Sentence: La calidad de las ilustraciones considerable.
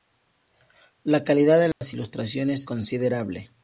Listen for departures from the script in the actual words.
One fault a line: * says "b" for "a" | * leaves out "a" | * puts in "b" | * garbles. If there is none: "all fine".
all fine